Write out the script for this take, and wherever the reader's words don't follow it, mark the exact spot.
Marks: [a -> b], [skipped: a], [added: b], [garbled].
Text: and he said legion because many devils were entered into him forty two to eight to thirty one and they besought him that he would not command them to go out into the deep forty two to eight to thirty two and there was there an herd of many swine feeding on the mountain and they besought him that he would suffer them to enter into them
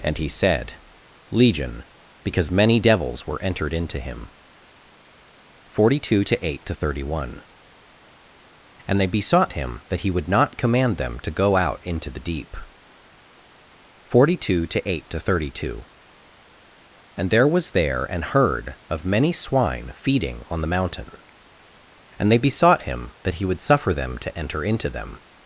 and he said legion because many devils were entered into him forty two to eight to thirty one and they besought him that he would not command them to go out into the deep forty two to eight to thirty two and there was there an herd of many swine feeding on the mountain and they besought him that he would suffer them to enter into them